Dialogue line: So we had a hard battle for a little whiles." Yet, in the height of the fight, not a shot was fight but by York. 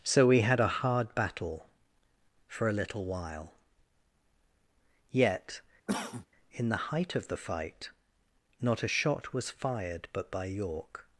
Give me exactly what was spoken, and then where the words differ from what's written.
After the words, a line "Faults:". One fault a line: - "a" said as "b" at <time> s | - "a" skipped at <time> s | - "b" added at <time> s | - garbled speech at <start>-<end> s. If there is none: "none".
So we had a hard battle for a little while." Yet, in the height of the fight, not a shot was fired but by York.
Faults:
- "whiles" said as "while" at 3.0 s
- "fight" said as "fired" at 9.5 s